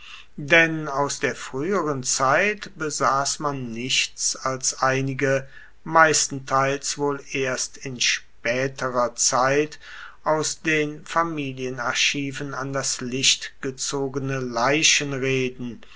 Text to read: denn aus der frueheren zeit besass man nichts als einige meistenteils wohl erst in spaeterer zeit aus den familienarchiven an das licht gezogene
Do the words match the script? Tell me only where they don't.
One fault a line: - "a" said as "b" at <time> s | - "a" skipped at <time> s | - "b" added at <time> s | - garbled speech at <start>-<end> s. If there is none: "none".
none